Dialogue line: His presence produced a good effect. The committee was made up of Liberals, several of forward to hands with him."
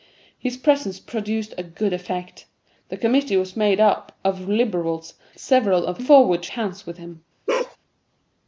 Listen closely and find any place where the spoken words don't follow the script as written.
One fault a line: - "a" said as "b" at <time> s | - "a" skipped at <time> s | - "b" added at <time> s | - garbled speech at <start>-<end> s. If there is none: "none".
none